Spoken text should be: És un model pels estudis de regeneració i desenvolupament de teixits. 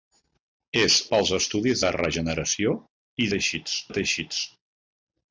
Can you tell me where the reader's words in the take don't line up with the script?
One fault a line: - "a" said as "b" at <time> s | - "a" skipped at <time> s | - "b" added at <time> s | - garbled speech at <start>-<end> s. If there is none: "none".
- "un model" skipped at 0.9 s
- "desenvolupament" said as "teixits" at 3.3 s